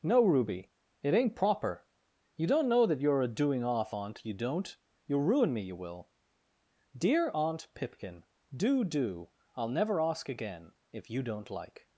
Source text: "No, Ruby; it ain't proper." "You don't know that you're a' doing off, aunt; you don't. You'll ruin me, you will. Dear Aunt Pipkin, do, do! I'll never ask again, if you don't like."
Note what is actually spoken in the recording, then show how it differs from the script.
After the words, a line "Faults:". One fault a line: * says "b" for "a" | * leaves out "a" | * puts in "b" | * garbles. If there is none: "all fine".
"No, Ruby; it ain't proper." "You don't know that you're a' doing off, aunt; you don't. You'll ruin me, you will. Dear Aunt Pipkin, do, do! I'll never ask again, if you don't like."
Faults:
all fine